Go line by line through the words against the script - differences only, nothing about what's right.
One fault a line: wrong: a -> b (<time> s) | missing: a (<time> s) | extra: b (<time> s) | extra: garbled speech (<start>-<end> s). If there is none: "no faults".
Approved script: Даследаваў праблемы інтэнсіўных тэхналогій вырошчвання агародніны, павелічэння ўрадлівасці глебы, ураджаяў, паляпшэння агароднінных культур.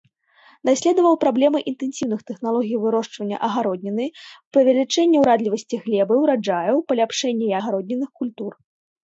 no faults